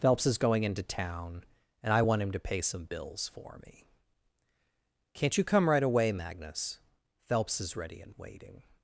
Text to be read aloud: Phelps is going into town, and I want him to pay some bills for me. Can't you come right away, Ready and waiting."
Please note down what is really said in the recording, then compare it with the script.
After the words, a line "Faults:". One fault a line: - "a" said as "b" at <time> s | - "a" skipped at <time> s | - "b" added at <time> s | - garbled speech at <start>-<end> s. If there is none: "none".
Phelps is going into town, and I want him to pay some bills for me. Can't you come right away, Magnus? Phelps is ready and waiting."
Faults:
- "Magnus Phelps is" added at 6.1 s